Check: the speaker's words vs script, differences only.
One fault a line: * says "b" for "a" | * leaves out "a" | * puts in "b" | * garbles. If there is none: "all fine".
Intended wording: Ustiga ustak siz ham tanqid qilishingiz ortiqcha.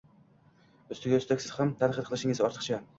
all fine